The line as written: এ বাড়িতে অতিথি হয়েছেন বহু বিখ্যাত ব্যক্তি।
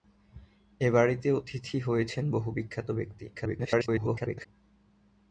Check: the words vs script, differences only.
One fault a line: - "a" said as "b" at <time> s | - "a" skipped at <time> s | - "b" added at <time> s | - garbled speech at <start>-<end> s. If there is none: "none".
- garbled speech at 3.3-4.5 s